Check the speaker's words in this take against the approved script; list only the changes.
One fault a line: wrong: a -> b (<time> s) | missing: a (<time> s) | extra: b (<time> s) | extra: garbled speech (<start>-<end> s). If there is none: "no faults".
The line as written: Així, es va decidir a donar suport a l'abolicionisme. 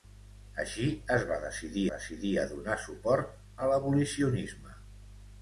extra: decidir (1.9 s)